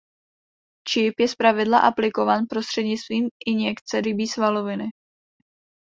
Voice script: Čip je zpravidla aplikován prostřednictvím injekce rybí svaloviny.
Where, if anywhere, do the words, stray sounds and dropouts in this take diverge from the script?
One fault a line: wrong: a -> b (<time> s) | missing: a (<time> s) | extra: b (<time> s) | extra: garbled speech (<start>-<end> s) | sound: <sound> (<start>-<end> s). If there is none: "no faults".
no faults